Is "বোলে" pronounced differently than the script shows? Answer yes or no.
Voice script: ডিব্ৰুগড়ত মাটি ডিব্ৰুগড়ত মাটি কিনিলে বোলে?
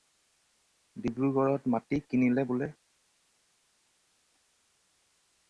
no